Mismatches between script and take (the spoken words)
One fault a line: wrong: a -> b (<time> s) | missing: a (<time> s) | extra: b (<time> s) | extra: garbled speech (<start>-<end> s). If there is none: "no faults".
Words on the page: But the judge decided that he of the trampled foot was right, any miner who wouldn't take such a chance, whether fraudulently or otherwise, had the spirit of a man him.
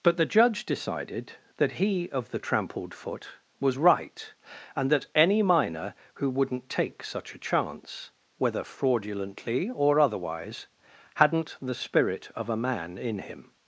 extra: and that (4.8 s)
wrong: had -> hadn't (11.1 s)
extra: in (13.0 s)